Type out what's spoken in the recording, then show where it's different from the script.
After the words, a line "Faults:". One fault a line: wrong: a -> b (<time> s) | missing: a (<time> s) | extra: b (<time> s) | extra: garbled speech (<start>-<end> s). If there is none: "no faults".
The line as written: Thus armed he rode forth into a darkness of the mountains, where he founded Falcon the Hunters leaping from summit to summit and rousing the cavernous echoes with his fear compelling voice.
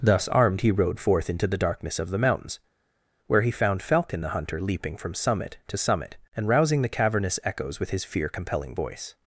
Thus armed he rode forth into the darkness of the mountains, where he found Falcon the Hunter leaping from summit to summit and rousing the cavernous echoes with his fear compelling voice.
Faults:
wrong: a -> the (1.4 s)
wrong: founded -> found (3.5 s)
wrong: Hunters -> Hunter (4.3 s)